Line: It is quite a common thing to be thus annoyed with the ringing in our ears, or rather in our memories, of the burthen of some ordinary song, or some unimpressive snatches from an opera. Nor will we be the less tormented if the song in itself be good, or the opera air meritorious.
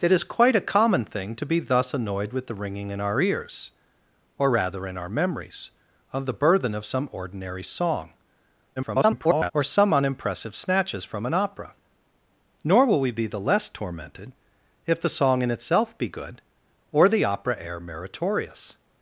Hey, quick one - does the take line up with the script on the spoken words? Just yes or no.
no